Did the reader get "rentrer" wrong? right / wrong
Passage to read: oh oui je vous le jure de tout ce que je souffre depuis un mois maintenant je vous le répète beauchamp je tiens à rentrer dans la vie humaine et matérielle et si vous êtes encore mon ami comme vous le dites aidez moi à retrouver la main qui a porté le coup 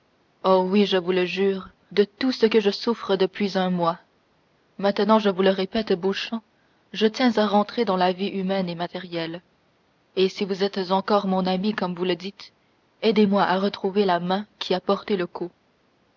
right